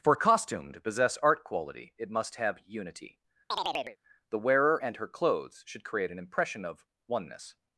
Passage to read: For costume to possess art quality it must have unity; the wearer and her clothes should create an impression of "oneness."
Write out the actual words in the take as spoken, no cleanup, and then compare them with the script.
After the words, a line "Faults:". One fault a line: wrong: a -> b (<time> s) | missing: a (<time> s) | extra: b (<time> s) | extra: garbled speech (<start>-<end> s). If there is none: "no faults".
For costume to possess art quality it must have unity; the wearer and her clothes should create an impression of "oneness."
Faults:
no faults